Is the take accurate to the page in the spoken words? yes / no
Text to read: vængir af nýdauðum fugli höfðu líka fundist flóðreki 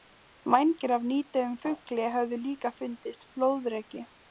yes